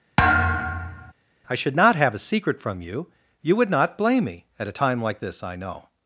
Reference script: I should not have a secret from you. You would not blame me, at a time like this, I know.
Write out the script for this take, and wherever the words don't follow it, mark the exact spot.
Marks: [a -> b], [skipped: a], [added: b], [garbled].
I should not have a secret from you. You would not blame me, at a time like this, I know.